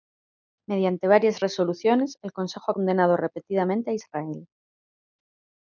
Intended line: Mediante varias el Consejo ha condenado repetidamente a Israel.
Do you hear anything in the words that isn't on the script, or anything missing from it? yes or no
yes